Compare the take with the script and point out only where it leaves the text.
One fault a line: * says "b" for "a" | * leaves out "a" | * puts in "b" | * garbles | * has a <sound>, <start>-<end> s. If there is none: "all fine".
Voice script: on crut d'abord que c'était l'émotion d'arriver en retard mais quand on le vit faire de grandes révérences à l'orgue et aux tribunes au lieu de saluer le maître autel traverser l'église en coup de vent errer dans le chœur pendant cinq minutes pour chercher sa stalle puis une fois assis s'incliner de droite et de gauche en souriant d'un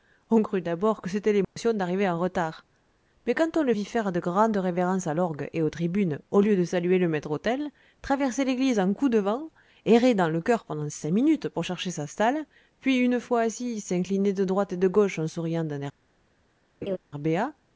* has a dropout, 1.4-1.6 s
* has a laugh, 16.8-17.0 s